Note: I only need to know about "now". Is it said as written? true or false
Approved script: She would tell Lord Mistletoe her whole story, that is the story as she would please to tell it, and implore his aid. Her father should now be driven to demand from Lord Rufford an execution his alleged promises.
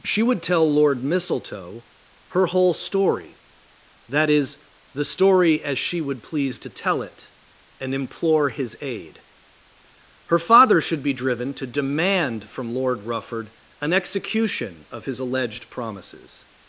false